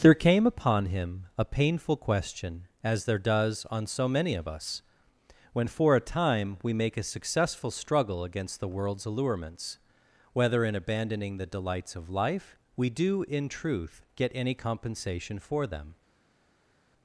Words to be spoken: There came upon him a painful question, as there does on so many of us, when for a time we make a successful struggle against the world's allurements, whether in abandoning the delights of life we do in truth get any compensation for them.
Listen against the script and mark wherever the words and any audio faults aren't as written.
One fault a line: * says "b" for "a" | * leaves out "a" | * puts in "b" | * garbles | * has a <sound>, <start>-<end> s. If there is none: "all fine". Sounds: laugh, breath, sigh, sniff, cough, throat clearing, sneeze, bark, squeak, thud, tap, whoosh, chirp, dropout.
all fine